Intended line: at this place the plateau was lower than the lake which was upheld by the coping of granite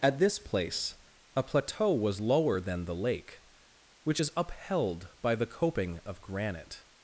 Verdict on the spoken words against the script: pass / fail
fail